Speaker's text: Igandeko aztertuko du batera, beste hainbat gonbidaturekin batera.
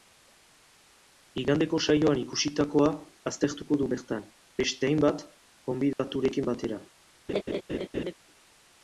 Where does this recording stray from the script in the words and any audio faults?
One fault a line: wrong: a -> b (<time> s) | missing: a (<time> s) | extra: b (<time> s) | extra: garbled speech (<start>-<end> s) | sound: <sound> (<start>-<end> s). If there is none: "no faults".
extra: saioan ikusitakoa (1.9 s)
wrong: batera -> bertan (3.9 s)
sound: dropout (5.9-6.0 s)
sound: laugh (7.3-8.1 s)